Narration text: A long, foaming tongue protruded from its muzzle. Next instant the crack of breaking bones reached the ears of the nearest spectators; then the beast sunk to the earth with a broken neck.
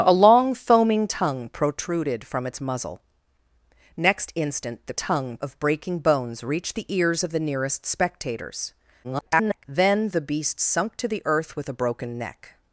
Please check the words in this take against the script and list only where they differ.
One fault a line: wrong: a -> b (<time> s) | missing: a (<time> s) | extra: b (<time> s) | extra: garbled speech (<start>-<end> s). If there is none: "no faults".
wrong: crack -> tongue (4.9 s)
extra: garbled speech (9.0-9.6 s)